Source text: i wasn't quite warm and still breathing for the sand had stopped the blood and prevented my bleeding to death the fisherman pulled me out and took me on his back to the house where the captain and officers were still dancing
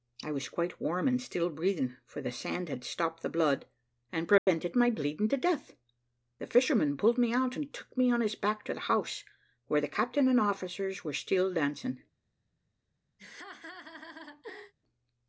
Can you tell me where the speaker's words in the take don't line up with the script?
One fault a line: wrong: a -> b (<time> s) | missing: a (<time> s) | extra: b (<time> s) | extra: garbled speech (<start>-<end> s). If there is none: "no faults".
wrong: wasn't -> was (0.3 s)